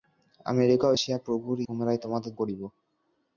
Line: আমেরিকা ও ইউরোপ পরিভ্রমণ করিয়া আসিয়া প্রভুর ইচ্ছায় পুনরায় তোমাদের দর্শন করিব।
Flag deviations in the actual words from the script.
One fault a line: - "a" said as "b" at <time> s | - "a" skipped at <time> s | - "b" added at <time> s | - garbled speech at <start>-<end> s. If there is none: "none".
- "ইউরোপ পরিভ্রমণ করিয়া" skipped at 1.0 s
- "ইচ্ছায়" skipped at 1.6 s
- "দর্শন" skipped at 2.3 s